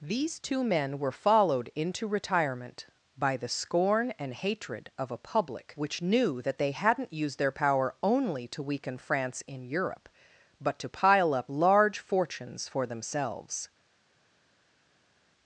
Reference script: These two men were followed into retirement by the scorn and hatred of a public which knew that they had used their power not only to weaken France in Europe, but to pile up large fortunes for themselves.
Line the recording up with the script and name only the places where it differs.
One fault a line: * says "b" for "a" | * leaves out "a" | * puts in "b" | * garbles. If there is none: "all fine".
* says "hadn't" for "had"
* leaves out "not"